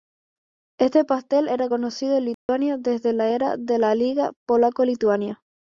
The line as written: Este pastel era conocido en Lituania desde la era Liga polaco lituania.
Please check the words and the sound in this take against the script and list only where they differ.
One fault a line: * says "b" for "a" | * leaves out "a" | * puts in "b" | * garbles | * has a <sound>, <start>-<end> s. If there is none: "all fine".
* has a dropout, 2.3-2.5 s
* puts in "de la"